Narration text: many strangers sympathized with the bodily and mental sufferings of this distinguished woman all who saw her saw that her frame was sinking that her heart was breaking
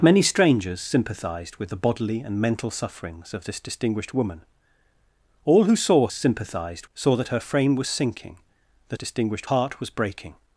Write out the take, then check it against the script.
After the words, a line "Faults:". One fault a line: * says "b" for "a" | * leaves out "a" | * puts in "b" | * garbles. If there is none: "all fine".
many strangers sympathized with the bodily and mental sufferings of this distinguished woman all who saw sympathized saw that her frame was sinking that distinguished heart was breaking
Faults:
* says "sympathized" for "her"
* says "distinguished" for "her"